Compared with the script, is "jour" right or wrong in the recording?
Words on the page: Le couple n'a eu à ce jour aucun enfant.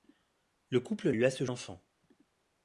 wrong